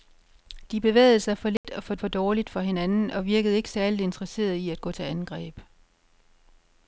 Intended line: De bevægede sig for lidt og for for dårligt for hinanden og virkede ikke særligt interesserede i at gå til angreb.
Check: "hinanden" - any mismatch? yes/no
no